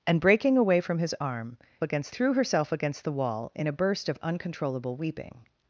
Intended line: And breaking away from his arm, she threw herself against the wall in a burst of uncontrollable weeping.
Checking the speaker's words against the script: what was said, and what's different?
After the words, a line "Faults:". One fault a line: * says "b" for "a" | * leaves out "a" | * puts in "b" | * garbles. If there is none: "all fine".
And breaking away from his arm, against threw herself against the wall in a burst of uncontrollable weeping.
Faults:
* says "against" for "she"